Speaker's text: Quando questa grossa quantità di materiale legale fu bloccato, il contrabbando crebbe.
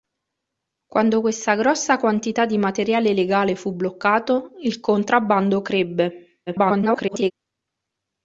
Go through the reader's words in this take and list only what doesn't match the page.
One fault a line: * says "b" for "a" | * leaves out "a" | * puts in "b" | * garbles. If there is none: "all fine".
* garbles